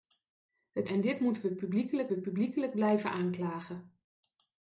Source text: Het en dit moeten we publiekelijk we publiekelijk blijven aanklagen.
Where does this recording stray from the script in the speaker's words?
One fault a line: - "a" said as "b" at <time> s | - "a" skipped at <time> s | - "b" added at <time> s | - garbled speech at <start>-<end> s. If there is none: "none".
none